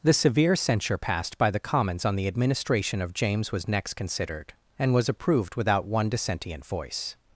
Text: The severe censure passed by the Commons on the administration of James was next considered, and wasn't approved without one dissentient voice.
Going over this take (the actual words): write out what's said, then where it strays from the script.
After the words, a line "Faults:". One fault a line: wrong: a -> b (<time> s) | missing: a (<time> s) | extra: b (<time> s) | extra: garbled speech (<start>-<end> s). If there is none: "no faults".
The severe censure passed by the Commons on the administration of James was next considered, and was approved without one dissentient voice.
Faults:
wrong: wasn't -> was (5.0 s)